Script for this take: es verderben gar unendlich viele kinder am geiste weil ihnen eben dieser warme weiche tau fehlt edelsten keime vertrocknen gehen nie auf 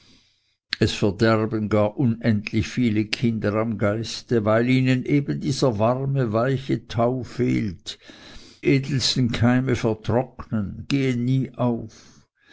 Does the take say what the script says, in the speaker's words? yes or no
yes